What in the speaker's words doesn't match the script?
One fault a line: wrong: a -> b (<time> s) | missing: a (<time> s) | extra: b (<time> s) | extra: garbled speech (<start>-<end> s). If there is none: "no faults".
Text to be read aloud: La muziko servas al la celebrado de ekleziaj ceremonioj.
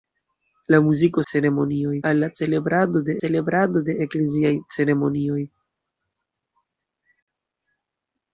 wrong: servas -> ceremonioj (1.3 s)
extra: celebrado de (3.2 s)